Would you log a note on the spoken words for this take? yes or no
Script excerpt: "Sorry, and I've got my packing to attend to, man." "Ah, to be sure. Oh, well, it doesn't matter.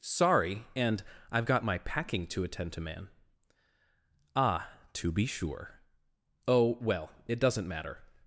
no